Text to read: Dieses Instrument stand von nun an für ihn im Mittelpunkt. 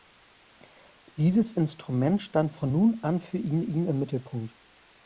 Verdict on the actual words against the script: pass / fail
fail